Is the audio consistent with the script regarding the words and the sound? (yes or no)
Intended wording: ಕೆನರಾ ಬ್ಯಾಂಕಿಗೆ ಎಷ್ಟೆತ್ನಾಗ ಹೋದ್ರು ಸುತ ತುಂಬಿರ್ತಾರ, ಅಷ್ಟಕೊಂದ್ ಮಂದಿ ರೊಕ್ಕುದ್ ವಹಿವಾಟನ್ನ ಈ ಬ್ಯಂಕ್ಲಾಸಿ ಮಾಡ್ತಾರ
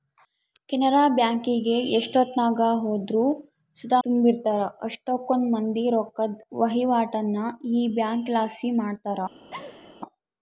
no